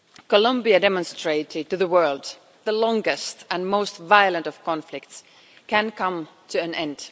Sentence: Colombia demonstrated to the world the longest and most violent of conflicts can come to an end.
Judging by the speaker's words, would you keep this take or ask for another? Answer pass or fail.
pass